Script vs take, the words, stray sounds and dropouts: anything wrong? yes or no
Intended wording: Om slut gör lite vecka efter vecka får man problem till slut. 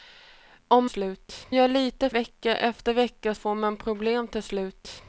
no